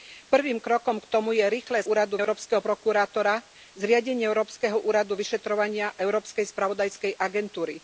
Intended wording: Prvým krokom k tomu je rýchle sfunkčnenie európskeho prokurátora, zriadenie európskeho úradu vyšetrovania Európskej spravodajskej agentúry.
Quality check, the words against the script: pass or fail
fail